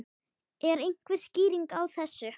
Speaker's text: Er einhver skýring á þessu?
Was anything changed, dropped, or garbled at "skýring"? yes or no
no